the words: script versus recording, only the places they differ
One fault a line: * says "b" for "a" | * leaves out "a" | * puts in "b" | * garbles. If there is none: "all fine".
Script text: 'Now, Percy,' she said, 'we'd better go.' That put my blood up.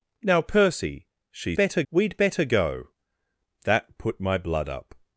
* says "better" for "said"